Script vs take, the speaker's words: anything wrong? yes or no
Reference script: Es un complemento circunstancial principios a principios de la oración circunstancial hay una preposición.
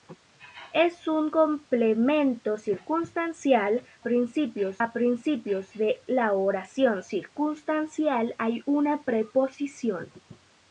no